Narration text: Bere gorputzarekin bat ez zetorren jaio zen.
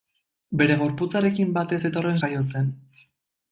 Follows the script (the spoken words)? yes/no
yes